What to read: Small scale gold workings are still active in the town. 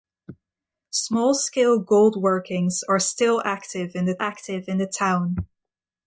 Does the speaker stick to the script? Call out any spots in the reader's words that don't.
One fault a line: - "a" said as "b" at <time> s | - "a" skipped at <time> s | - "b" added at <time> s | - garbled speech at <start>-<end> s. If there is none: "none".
- "active in the" added at 4.2 s